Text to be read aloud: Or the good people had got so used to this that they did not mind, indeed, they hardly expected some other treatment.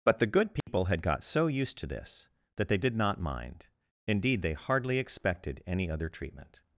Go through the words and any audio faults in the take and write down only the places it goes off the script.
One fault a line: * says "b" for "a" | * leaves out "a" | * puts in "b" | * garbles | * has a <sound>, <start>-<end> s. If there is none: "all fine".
* says "But" for "Or"
* has a dropout, 0.6-0.7 s
* says "any" for "some"